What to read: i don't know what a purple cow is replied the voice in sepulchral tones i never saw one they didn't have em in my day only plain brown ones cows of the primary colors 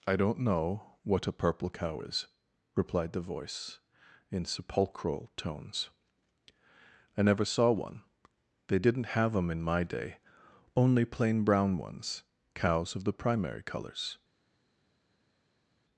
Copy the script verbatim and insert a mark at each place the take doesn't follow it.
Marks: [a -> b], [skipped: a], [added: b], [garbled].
i don't know what a purple cow is replied the voice in sepulchral tones i never saw one they didn't have em in my day only plain brown ones cows of the primary colors